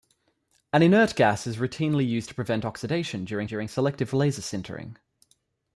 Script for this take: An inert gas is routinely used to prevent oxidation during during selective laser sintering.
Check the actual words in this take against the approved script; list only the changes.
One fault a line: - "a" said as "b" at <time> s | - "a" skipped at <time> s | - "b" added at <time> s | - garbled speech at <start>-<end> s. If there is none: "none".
none